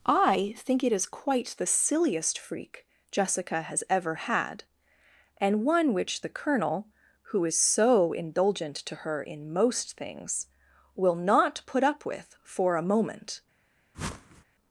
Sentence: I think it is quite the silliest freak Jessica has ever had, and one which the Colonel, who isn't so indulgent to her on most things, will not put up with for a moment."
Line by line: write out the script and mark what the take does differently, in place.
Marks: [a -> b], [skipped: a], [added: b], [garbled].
I think it is quite the silliest freak Jessica has ever had, and one which the Colonel, who [isn't -> is] so indulgent to her [on -> in] most things, will not put up with for a moment."